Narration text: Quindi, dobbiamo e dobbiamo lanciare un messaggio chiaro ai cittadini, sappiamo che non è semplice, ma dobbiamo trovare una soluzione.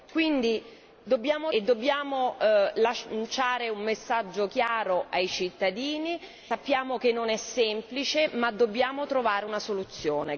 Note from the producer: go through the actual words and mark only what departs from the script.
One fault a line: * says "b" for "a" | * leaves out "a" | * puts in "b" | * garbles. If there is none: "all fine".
all fine